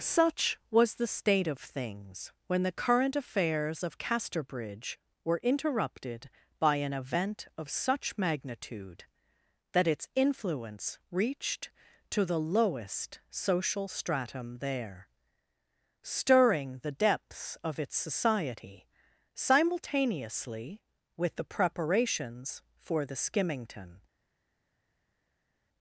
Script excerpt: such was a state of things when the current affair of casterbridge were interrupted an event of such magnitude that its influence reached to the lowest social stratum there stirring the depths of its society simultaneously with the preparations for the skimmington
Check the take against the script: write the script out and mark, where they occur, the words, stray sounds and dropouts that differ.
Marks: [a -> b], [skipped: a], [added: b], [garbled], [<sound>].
such was [a -> the] state of things when the current [affair -> affairs] of casterbridge were interrupted [added: by] an event of such magnitude that its influence reached to the lowest social stratum there stirring the depths of its society simultaneously with the preparations for the skimmington